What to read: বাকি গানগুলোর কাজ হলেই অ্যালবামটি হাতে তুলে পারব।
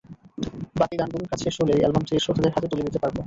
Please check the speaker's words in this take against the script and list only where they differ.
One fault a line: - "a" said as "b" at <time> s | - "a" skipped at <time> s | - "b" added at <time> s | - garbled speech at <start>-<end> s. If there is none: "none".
- "শেষ" added at 1.4 s
- "শ্রোতাদের" added at 2.2 s
- "দিতে" added at 2.9 s